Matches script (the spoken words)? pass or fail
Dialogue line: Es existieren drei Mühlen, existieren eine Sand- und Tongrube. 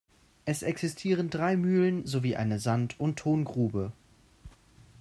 fail